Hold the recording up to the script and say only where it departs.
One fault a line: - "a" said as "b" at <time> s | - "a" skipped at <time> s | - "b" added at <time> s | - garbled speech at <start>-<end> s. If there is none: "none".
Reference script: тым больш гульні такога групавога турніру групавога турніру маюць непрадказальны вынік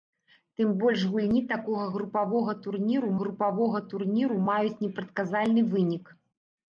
none